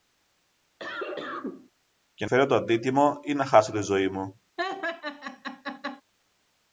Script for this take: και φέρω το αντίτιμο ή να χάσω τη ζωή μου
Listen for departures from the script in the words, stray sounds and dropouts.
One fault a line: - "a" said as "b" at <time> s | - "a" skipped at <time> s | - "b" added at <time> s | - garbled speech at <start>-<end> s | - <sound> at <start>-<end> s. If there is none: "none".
- cough at 0.8-1.7 s
- laugh at 4.6-6.0 s